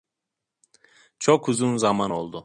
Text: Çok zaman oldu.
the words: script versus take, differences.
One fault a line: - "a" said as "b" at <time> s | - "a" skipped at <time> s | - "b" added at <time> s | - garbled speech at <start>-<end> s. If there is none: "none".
- "uzun" added at 1.5 s